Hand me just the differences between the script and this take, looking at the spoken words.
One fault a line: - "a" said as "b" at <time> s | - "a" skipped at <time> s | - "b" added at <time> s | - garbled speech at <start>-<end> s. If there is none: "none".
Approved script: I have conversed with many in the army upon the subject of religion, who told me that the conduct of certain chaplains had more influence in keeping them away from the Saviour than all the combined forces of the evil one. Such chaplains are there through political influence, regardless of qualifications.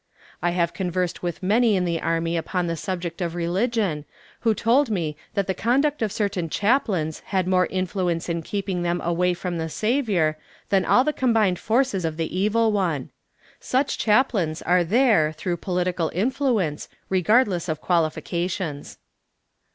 none